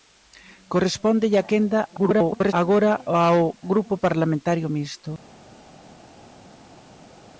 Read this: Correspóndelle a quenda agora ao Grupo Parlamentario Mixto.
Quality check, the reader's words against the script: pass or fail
fail